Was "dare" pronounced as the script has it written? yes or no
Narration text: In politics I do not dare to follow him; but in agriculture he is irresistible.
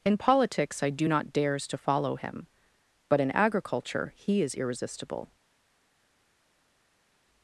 no